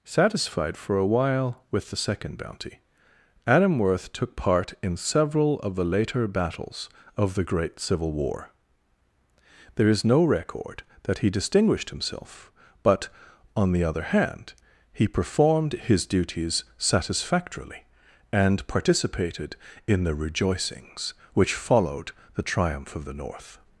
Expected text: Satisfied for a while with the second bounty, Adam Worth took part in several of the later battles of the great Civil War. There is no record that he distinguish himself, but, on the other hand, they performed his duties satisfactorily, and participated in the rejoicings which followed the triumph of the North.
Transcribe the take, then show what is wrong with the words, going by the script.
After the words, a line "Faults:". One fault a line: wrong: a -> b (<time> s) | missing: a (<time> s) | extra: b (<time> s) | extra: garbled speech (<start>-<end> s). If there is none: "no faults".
Satisfied for a while with the second bounty, Adam Worth took part in several of the later battles of the great Civil War. There is no record that he distinguished himself, but, on the other hand, he performed his duties satisfactorily, and participated in the rejoicings which followed the triumph of the North.
Faults:
wrong: distinguish -> distinguished (11.3 s)
wrong: they -> he (14.9 s)